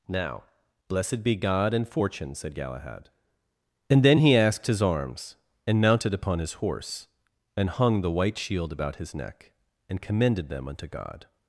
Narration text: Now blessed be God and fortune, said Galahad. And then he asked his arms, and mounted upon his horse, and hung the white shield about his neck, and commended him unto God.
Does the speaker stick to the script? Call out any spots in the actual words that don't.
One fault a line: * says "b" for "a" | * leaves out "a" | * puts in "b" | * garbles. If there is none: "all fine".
* says "them" for "him"